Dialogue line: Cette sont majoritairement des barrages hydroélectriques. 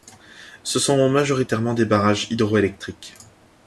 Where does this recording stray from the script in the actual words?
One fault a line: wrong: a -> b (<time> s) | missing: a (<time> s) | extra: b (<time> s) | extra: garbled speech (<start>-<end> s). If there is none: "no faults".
wrong: Cette -> Ce (0.6 s)